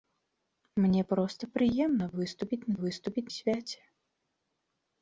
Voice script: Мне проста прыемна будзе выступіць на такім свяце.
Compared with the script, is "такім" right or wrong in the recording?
wrong